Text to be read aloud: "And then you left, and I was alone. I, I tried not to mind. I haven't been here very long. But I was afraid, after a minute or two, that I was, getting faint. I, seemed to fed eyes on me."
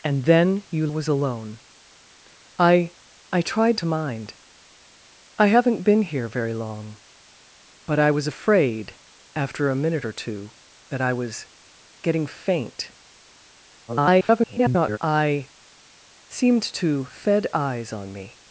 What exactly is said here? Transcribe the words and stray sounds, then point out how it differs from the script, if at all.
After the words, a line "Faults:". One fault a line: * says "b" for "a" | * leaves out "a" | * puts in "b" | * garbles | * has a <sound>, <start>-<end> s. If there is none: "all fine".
"And then you was alone. I, I tried to mind. I haven't been here very long. But I was afraid, after a minute or two, that I was, getting faint. [garbled] I, seemed to fed eyes on me."
Faults:
* leaves out "left and I"
* leaves out "not"
* garbles